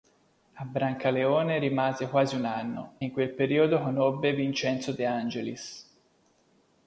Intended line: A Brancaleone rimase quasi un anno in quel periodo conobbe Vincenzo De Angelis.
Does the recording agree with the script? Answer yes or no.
yes